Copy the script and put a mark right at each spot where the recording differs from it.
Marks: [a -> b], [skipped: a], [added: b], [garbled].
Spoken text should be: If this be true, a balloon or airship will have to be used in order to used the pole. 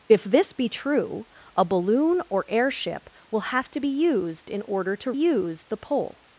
If this be true, a balloon or airship will have to be used in order to used the pole.